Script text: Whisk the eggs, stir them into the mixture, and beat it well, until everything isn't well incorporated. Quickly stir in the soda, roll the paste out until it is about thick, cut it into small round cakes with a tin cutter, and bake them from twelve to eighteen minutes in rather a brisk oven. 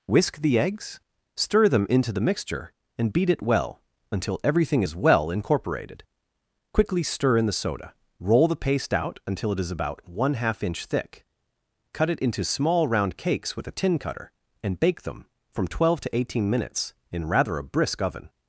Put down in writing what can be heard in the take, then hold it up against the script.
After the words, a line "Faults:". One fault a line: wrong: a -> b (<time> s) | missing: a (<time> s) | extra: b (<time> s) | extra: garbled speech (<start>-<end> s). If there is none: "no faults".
Whisk the eggs, stir them into the mixture, and beat it well, until everything is well incorporated. Quickly stir in the soda, roll the paste out until it is about one half inch thick, cut it into small round cakes with a tin cutter, and bake them from twelve to eighteen minutes in rather a brisk oven.
Faults:
wrong: isn't -> is (4.8 s)
extra: one half inch (10.1 s)